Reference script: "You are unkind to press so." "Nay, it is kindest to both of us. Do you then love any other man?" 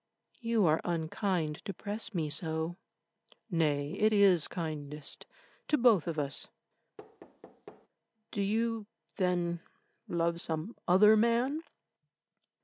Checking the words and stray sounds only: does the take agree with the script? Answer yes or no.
no